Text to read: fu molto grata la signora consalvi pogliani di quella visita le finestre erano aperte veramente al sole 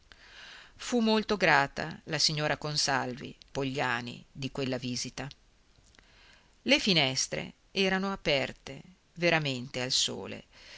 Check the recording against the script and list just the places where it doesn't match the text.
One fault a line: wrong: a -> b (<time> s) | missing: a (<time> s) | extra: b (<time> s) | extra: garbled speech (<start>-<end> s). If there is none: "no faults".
no faults